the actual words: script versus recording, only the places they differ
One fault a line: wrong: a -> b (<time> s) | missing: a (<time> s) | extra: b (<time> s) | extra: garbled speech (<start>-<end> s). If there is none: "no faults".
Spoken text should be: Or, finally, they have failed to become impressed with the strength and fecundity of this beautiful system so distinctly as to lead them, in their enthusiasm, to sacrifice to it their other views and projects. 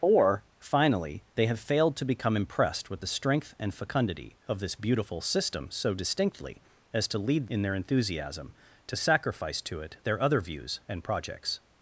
missing: them (7.5 s)